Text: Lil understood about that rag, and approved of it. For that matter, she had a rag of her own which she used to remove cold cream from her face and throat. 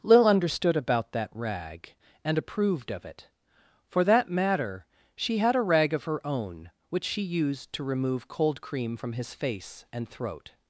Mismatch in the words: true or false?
true